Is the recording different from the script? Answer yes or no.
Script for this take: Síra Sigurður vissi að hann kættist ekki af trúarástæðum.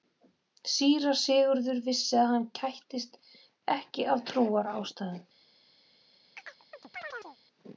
no